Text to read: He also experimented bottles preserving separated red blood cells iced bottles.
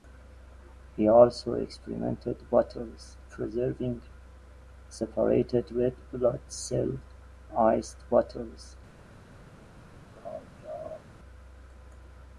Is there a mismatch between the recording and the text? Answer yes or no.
no